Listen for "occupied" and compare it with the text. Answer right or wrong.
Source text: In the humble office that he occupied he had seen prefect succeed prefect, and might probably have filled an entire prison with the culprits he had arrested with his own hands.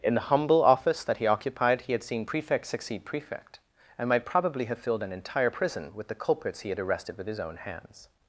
right